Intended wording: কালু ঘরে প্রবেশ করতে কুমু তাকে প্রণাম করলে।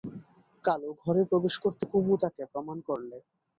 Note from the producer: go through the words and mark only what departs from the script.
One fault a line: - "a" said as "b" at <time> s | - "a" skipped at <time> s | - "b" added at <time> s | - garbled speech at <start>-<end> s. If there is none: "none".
none